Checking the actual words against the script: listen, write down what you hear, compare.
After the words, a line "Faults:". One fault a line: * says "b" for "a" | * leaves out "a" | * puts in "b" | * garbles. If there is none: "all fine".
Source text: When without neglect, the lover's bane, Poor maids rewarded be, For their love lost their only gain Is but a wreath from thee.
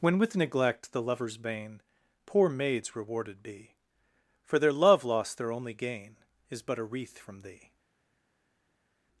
When with neglect, the lover's bane, Poor maids rewarded be, For their love lost their only gain Is but a wreath from thee.
Faults:
* says "with" for "without"